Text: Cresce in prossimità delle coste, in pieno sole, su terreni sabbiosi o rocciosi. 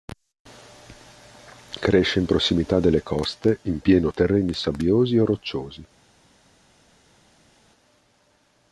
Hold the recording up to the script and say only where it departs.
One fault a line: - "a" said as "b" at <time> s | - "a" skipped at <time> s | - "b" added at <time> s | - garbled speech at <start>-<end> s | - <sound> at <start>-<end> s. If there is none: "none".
- "sole su" skipped at 4.1 s